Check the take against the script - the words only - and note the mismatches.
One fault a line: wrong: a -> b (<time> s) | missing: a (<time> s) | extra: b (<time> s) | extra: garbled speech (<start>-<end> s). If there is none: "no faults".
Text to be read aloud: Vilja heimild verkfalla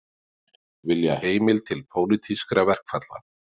extra: til pólitískra (1.7 s)